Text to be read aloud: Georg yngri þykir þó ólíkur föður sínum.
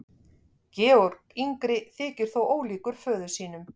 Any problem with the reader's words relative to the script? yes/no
no